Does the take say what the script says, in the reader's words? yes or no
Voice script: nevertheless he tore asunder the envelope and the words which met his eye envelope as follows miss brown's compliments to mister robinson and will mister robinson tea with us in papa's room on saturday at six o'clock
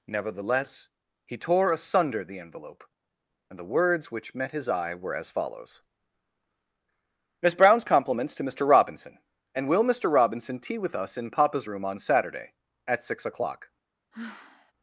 no